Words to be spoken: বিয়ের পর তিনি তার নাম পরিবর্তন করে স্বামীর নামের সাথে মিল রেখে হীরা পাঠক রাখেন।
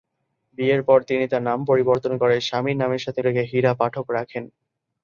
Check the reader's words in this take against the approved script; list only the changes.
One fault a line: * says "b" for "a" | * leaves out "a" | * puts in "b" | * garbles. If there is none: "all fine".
* leaves out "মিল"